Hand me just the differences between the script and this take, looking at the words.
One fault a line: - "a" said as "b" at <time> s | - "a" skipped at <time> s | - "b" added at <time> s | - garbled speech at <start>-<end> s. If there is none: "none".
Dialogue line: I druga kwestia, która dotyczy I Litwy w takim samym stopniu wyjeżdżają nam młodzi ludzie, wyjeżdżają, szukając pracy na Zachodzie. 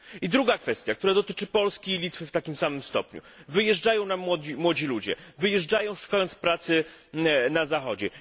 - "Polski" added at 1.5 s